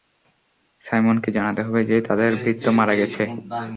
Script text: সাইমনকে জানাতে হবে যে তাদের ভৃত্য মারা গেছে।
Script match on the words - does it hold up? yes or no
yes